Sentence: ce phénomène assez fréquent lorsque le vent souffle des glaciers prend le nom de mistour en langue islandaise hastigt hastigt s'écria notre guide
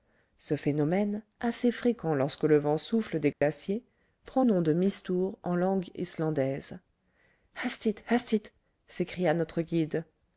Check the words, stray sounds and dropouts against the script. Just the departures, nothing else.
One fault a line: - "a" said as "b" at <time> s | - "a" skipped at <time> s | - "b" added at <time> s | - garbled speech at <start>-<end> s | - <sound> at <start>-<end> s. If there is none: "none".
- dropout at 3.3-3.4 s
- "le" skipped at 4.4 s